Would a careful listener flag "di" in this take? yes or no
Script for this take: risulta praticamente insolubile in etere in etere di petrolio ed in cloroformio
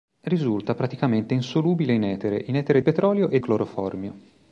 yes